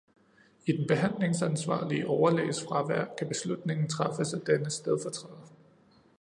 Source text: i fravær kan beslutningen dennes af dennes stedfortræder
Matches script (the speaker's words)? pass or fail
fail